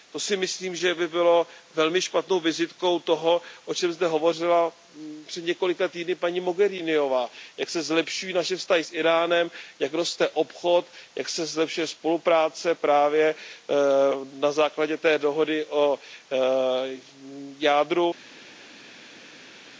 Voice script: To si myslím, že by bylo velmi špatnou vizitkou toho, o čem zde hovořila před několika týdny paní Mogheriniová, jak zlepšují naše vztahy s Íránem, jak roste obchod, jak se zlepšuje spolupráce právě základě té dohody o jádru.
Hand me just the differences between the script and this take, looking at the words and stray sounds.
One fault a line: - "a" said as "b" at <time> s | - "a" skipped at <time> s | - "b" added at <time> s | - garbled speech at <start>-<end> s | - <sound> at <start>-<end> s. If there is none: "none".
- "se" added at 7.7 s
- "na" added at 14.3 s